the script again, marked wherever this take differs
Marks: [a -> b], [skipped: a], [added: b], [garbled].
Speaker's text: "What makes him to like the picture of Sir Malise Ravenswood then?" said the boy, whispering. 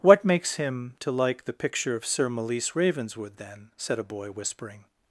"What makes him to like the picture of Sir Malise Ravenswood then?" said [the -> a] boy, whispering.